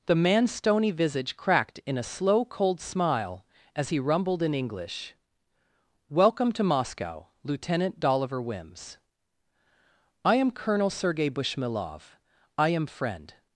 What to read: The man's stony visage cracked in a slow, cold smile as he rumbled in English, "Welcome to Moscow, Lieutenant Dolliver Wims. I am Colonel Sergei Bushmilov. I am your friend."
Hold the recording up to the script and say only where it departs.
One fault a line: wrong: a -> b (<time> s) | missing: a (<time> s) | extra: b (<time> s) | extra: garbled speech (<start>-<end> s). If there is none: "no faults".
missing: your (12.9 s)